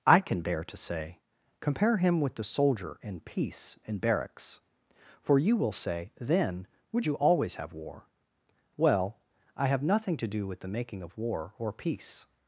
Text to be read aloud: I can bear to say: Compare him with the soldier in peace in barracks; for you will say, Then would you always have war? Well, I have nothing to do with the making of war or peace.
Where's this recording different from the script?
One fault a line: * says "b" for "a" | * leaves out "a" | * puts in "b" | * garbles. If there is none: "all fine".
all fine